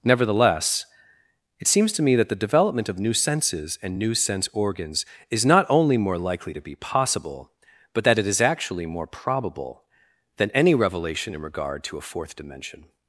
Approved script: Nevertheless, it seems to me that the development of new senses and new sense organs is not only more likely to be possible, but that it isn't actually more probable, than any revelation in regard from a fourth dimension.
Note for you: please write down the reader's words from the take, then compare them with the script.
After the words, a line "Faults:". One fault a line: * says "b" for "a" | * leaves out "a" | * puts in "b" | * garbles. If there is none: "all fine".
Nevertheless, it seems to me that the development of new senses and new sense organs is not only more likely to be possible, but that it is actually more probable, than any revelation in regard to a fourth dimension.
Faults:
* says "is" for "isn't"
* says "to" for "from"